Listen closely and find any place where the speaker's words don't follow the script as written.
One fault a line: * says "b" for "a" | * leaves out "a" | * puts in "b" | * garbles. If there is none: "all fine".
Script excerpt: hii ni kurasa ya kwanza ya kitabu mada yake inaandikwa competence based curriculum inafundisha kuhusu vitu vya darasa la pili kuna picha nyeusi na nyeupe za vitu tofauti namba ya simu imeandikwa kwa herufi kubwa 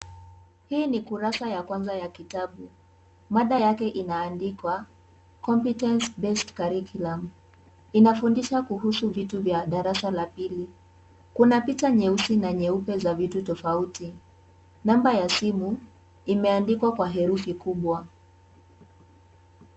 all fine